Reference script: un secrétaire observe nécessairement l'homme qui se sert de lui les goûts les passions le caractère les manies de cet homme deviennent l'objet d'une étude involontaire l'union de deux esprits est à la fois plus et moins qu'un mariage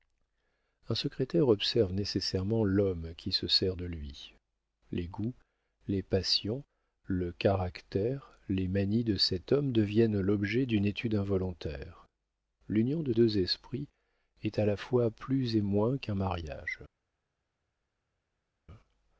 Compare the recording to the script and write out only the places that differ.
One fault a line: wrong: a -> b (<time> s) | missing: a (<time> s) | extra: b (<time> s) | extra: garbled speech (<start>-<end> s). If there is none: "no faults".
no faults